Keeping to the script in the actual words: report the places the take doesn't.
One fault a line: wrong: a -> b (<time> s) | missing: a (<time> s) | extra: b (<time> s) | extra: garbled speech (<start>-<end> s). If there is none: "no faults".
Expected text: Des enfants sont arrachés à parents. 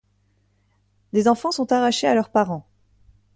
extra: leurs (2.1 s)